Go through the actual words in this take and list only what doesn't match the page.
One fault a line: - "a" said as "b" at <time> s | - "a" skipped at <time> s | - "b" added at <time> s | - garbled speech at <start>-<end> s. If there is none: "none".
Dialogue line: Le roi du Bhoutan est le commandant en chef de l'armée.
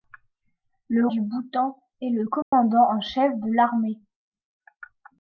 - "roi" skipped at 1.1 s